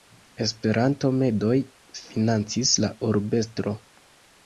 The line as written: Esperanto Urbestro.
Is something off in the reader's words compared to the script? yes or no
yes